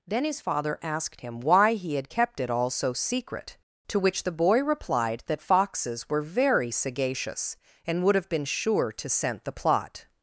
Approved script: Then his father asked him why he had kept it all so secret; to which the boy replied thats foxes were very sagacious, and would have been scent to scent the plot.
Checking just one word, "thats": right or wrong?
wrong